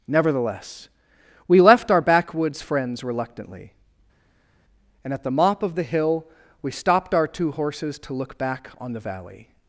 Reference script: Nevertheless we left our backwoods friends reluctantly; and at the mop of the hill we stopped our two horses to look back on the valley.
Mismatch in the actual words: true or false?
false